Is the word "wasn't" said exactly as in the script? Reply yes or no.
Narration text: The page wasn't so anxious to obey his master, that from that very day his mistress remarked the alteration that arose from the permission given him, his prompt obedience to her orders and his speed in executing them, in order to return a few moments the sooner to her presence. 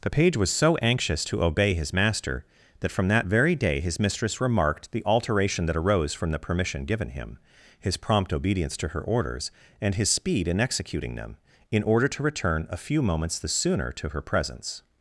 no